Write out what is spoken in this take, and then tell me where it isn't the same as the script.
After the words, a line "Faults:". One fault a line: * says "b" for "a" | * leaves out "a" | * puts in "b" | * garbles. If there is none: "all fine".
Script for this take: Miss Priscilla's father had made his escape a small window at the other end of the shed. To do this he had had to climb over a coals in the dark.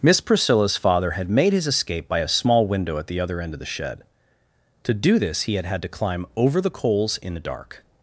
Miss Priscilla's father had made his escape by a small window at the other end of the shed. To do this he had had to climb over the coals in the dark.
Faults:
* puts in "by"
* says "the" for "a"